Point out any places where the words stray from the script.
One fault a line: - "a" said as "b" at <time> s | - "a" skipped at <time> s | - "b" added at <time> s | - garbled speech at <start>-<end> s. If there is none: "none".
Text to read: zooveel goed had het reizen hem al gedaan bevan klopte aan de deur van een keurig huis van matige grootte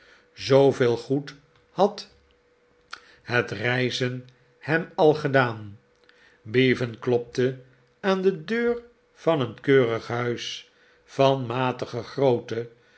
none